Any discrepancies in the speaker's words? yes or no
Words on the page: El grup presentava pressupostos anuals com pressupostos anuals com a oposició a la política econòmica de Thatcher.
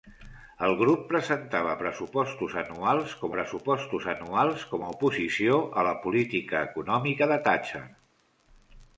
no